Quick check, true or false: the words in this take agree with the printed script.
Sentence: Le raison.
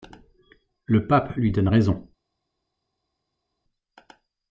false